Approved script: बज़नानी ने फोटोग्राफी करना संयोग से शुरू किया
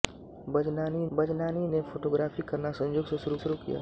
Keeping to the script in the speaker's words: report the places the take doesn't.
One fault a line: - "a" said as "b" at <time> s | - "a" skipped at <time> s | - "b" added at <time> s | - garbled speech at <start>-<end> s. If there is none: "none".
- "बज़नानी" added at 1.1 s
- "शुरू" added at 3.4 s